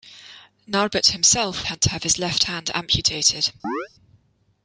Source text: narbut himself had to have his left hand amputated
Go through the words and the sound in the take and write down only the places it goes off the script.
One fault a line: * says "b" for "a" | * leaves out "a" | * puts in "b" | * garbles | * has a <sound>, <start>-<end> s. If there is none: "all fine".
* has a chirp, 3.6-3.9 s